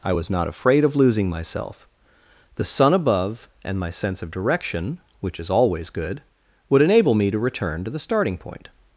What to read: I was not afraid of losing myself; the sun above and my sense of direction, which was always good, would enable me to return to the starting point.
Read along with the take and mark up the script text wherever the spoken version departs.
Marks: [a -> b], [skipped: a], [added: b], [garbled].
I was not afraid of losing myself; the sun above and my sense of direction, which [was -> is] always good, would enable me to return to the starting point.